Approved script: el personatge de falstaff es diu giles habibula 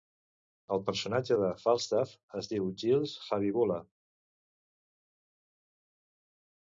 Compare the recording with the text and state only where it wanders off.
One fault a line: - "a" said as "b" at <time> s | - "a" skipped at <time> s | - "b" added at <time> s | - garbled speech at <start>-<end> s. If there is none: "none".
none